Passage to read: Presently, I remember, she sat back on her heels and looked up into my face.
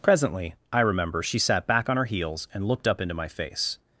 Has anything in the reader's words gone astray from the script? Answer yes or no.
no